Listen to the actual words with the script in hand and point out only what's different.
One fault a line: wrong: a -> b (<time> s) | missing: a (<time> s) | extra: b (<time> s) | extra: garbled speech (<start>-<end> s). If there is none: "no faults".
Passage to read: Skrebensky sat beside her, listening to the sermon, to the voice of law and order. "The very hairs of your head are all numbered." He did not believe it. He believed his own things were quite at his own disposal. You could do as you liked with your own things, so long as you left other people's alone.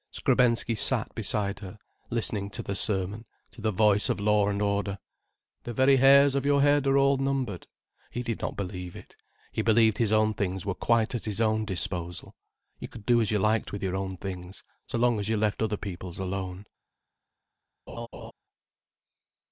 no faults